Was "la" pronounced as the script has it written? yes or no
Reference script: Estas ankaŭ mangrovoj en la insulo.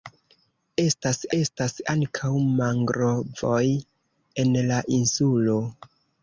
yes